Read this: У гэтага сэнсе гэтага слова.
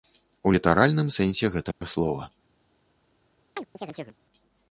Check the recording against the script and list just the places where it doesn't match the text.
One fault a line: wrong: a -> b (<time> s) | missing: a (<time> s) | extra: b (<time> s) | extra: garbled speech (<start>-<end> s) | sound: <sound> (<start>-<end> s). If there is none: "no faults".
wrong: гэтага -> літаральным (0.5 s)
sound: dropout (1.7-1.8 s)
sound: chirp (3.6-4.2 s)